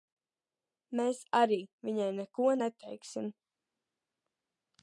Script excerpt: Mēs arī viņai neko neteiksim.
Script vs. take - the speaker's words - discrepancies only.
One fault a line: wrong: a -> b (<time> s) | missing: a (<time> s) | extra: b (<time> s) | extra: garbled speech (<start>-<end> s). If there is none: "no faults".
no faults